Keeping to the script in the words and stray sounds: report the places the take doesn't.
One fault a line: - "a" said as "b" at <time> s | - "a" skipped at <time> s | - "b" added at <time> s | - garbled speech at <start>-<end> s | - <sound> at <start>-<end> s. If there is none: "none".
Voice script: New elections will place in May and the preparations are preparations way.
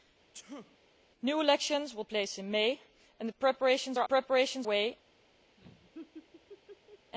- sneeze at 0.3-0.8 s
- laugh at 5.6-7.1 s